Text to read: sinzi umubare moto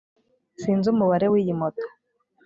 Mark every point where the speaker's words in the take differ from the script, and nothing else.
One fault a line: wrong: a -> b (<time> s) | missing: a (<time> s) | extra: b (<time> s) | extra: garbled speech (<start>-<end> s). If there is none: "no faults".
extra: w'iyi (1.3 s)